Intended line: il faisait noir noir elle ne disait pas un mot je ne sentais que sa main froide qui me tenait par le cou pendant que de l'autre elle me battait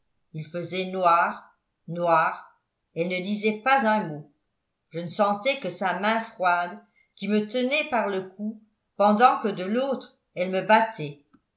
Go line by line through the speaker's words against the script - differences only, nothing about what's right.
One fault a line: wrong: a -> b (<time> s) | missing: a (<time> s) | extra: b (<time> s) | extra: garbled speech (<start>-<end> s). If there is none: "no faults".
no faults